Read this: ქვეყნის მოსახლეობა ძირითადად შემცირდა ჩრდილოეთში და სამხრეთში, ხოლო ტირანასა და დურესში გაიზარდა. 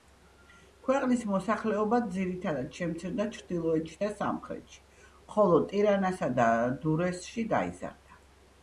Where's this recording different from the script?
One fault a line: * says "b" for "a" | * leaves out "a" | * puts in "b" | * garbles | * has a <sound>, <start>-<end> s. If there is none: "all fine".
all fine